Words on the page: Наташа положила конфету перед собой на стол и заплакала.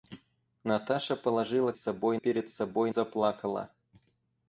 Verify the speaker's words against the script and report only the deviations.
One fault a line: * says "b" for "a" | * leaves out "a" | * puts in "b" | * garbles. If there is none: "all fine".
* says "собой" for "конфету"
* leaves out "на стол и"